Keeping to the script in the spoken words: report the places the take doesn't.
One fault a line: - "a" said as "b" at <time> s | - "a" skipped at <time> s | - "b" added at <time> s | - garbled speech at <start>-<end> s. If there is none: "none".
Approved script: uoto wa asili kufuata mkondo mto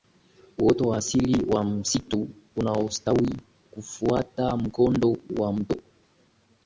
- "wa msitu unaostawi" added at 1.4 s
- "wa" added at 5.4 s